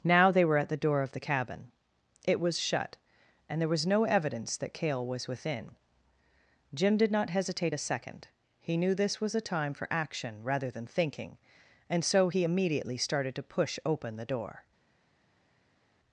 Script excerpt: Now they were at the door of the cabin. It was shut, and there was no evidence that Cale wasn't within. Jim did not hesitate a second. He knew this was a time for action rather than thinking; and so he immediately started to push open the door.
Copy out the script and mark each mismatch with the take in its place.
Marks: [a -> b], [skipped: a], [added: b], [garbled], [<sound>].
Now they were at the door of the cabin. It was shut, and there was no evidence that Cale [wasn't -> was] within. Jim did not hesitate a second. He knew this was a time for action rather than thinking; and so he immediately started to push open the door.